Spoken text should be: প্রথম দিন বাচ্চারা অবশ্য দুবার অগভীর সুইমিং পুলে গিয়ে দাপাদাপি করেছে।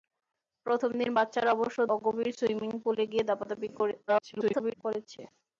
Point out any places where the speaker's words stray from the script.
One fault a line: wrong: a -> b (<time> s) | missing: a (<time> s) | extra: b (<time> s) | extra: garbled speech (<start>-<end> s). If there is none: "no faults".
missing: দুবার (1.8 s)
extra: garbled speech (4.1-4.7 s)